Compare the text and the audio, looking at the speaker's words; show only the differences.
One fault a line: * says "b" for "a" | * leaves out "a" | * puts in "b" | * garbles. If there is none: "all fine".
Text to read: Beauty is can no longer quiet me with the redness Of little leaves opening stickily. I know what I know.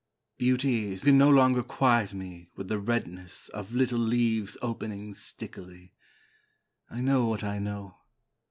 all fine